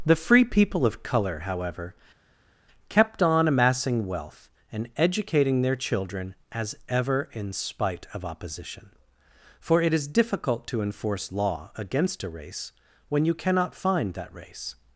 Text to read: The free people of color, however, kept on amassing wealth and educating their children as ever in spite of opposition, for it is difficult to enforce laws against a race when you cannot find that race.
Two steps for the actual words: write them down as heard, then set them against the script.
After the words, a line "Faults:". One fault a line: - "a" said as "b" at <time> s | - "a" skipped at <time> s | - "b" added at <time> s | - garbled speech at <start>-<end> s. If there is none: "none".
The free people of color, however, kept on amassing wealth and educating their children as ever in spite of opposition, for it is difficult to enforce law against a race when you cannot find that race.
Faults:
- "laws" said as "law" at 11.3 s